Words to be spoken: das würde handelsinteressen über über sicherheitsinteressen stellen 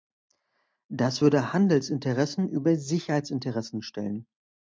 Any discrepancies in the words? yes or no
yes